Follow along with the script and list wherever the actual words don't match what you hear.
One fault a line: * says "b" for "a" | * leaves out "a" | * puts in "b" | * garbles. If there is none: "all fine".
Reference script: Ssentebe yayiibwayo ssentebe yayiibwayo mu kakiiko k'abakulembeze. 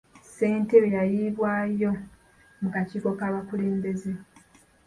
* leaves out "ssentebe yayiibwayo"